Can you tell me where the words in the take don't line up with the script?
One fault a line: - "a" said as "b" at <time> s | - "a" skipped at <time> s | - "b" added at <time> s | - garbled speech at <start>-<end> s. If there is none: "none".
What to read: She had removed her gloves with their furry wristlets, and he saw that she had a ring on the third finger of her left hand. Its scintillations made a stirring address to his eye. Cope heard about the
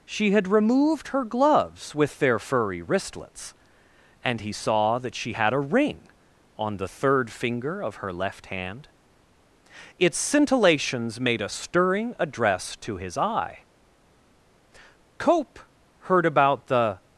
none